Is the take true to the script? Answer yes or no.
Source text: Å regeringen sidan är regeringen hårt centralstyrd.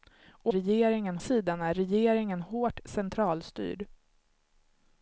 yes